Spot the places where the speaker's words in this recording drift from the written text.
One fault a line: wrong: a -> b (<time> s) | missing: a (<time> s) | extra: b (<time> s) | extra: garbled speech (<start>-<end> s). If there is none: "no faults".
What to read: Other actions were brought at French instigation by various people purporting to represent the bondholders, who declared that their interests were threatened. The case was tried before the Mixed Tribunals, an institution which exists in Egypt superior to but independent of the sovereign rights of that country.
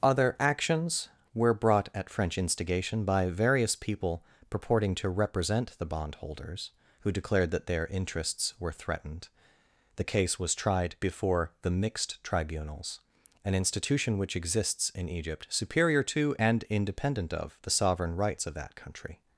wrong: but -> and (16.4 s)